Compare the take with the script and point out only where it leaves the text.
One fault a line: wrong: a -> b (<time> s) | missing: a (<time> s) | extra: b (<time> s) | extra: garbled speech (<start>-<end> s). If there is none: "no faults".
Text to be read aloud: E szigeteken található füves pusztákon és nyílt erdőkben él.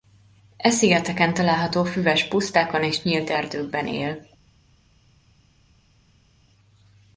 no faults